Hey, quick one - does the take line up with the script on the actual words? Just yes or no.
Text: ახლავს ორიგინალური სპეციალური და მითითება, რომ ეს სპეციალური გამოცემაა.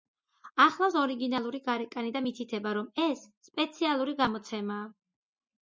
no